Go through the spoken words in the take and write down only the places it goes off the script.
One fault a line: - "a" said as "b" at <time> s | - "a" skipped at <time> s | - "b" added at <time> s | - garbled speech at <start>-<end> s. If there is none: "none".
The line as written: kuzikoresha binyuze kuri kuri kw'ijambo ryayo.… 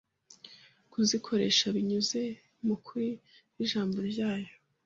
- "kuri" said as "mu" at 2.6 s